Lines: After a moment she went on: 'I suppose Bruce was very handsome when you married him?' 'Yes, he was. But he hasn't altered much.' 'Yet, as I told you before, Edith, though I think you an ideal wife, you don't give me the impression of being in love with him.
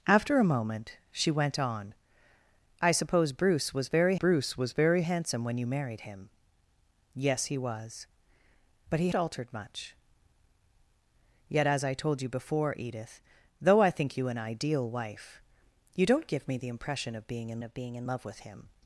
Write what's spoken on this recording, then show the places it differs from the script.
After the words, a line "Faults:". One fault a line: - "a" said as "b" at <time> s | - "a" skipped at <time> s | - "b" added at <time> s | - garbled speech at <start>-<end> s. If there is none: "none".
After a moment she went on: 'I suppose Bruce was very Bruce was very handsome when you married him?' 'Yes, he was. But he altered much.' 'Yet, as I told you before, Edith, though I think you an ideal wife, you don't give me the impression of being in of being in love with him.
Faults:
- "Bruce was very" added at 4.1 s
- "hasn't" skipped at 9.1 s
- "of being in" added at 17.6 s